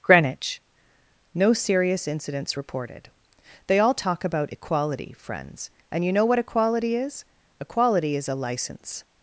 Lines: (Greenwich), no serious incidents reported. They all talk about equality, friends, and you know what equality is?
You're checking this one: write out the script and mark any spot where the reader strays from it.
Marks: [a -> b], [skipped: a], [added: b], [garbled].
(Greenwich), no serious incidents reported. They all talk about equality, friends, and you know what equality is? [added: Equality is a license]